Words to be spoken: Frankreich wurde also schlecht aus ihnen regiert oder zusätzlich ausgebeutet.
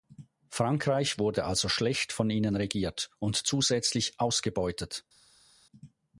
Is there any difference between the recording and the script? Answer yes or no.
yes